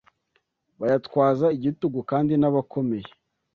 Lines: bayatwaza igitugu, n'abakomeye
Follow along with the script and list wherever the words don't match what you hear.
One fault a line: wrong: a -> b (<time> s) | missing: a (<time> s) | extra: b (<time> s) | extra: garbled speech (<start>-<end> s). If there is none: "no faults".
extra: kandi (2.1 s)